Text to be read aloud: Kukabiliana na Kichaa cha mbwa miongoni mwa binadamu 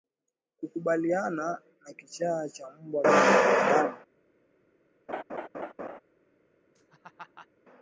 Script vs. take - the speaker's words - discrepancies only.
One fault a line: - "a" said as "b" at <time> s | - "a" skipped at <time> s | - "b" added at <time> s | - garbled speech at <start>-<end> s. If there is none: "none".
- "miongoni" skipped at 3.0 s